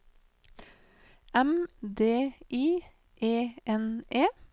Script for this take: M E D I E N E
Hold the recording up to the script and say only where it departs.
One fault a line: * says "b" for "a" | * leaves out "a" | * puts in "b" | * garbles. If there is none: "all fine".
* leaves out "E"